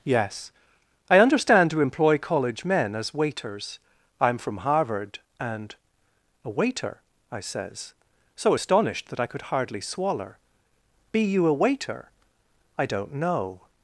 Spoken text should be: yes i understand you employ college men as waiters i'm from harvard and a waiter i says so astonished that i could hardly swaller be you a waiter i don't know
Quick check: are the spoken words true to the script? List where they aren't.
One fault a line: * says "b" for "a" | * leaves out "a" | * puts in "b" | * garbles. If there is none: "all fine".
* says "to" for "you"